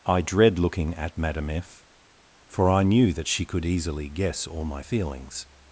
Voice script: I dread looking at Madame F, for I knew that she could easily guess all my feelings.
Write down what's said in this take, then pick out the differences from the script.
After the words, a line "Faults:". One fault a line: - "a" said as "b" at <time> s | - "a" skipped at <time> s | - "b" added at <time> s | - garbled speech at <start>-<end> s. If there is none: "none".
I dread looking at Madame F, for I knew that she could easily guess all my feelings.
Faults:
none